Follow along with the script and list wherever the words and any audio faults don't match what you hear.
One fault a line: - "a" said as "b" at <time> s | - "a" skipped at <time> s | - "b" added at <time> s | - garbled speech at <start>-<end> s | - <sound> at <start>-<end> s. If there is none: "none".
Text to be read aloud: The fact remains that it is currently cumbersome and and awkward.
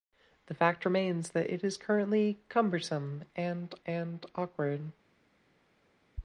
none